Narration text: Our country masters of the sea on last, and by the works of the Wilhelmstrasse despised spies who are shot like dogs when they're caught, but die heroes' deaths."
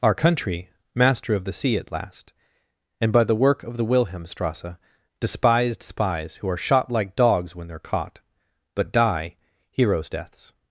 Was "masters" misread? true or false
true